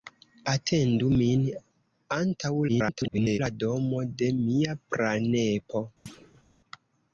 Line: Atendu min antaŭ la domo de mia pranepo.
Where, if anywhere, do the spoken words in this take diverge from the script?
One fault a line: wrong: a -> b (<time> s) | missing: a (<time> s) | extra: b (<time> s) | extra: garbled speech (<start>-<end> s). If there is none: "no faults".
extra: garbled speech (2.7-3.4 s)